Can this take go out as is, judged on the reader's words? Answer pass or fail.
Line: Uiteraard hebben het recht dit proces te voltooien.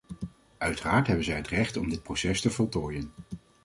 fail